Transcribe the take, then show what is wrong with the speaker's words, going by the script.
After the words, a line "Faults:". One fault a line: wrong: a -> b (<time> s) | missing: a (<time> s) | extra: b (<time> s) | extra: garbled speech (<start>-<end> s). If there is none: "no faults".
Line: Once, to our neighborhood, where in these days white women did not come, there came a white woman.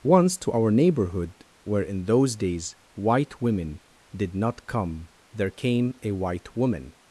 Once, to our neighborhood, where in those days white women did not come, there came a white woman.
Faults:
wrong: these -> those (2.0 s)